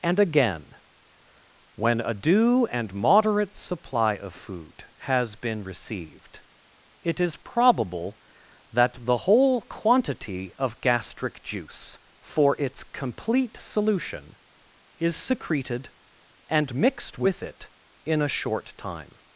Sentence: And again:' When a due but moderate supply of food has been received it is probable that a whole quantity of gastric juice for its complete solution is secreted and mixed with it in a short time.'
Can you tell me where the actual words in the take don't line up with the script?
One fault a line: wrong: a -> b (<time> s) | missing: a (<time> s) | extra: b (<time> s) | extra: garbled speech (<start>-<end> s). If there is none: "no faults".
wrong: but -> and (2.7 s)
wrong: a -> the (9.1 s)